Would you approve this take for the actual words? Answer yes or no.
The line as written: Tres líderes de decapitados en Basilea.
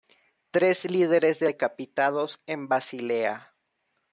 yes